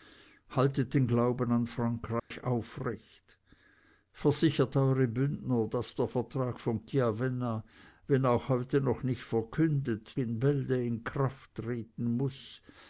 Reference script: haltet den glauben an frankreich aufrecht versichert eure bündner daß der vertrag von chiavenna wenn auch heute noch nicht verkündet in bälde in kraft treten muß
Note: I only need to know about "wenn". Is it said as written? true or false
true